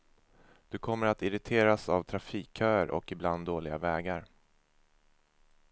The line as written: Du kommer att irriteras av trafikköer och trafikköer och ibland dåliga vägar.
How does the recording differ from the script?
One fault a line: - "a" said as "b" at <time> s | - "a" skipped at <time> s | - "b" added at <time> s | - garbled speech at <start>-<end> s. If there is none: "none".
- "trafikköer och" skipped at 3.1 s